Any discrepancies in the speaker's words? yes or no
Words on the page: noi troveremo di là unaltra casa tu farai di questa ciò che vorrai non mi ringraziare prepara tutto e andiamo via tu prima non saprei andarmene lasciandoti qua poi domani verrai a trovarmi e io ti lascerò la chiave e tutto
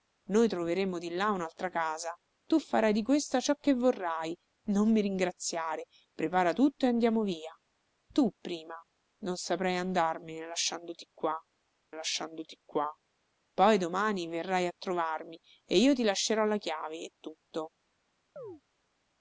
yes